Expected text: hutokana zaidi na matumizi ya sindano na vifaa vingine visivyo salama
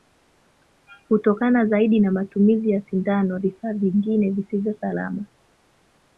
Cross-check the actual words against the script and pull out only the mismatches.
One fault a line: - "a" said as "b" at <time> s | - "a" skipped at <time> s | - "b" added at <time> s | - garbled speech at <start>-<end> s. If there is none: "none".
- "na" skipped at 3.4 s